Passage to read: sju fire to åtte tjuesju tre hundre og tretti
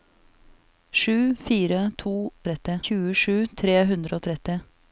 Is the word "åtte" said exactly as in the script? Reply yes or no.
no